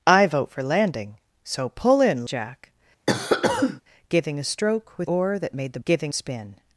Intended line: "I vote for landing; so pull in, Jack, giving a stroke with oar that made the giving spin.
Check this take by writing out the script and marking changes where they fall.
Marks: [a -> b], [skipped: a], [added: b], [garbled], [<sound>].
"I vote for landing; so pull in, Jack, [cough] giving a stroke with oar that made the giving spin.